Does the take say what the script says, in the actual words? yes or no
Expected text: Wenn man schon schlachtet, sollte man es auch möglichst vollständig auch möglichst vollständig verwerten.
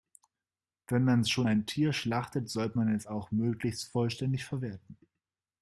no